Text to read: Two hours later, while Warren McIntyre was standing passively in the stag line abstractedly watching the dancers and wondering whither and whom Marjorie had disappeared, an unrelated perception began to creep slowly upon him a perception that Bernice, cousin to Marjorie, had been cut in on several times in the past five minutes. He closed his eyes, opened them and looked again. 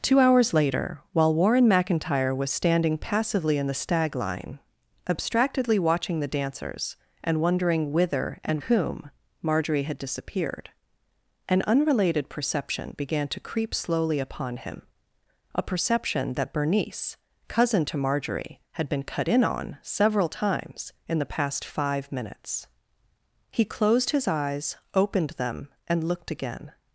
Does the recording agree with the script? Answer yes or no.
yes